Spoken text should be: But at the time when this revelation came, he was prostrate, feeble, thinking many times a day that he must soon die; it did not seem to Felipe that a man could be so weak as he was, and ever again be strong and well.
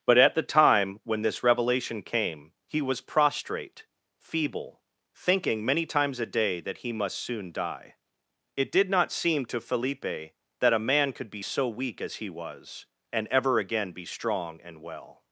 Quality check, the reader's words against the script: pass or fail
pass